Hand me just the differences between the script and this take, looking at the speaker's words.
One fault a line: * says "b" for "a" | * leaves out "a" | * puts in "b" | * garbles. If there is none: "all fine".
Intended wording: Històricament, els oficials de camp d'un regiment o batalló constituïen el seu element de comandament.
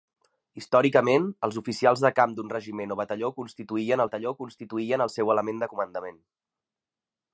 * puts in "batalló constituïen"